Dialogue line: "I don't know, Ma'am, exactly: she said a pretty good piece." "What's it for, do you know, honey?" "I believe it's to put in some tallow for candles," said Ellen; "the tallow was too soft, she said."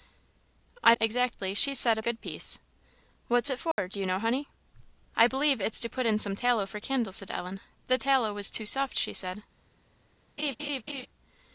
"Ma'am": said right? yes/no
no